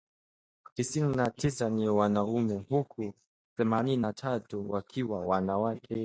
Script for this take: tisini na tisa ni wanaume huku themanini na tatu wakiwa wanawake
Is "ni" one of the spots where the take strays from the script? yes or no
no